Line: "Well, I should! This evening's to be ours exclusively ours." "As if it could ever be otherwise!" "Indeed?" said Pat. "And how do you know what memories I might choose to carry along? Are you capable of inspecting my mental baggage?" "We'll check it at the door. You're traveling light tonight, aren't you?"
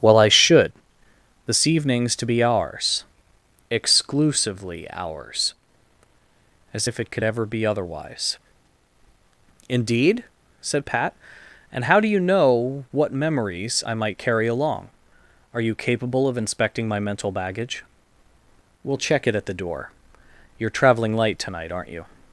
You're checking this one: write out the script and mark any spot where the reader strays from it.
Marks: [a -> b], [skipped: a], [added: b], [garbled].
"Well, I should! This evening's to be ours exclusively ours." "As if it could ever be otherwise!" "Indeed?" said Pat. "And how do you know what memories I might [skipped: choose to] carry along? Are you capable of inspecting my mental baggage?" "We'll check it at the door. You're traveling light tonight, aren't you?"